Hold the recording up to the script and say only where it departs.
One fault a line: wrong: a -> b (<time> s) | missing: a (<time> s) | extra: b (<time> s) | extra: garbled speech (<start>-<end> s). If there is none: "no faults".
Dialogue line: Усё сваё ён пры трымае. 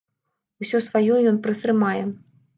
no faults